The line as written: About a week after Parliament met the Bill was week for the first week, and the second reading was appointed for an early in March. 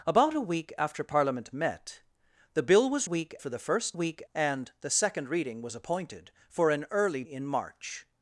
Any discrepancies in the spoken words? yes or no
no